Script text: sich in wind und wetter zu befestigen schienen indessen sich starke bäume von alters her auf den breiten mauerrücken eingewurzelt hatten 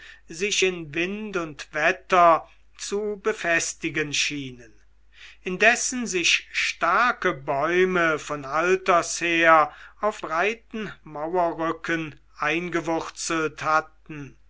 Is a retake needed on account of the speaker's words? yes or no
yes